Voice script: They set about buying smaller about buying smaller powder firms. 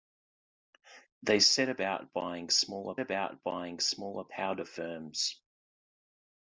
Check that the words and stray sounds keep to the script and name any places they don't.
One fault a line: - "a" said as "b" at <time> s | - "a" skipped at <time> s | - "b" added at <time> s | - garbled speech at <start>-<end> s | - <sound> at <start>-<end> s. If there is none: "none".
none